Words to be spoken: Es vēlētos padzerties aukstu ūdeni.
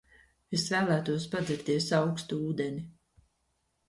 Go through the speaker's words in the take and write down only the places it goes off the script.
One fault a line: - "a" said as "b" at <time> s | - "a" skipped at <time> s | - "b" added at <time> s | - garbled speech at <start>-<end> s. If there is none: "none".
none